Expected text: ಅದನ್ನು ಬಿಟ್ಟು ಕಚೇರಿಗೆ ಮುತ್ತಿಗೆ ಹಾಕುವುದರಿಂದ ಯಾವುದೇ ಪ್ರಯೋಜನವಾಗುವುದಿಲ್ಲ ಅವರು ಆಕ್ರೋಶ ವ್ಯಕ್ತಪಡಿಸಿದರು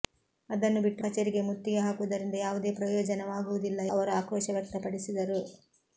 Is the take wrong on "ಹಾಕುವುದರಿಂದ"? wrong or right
right